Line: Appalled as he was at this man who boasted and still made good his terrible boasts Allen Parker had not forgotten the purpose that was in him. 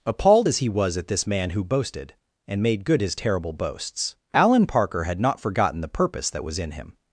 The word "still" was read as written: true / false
false